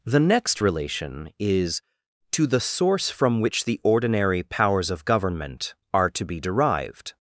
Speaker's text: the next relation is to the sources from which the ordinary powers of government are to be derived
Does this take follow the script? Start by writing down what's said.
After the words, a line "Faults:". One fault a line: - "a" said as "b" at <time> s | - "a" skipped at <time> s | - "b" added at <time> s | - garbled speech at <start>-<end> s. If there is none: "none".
the next relation is to the source from which the ordinary powers of government are to be derived
Faults:
- "sources" said as "source" at 2.6 s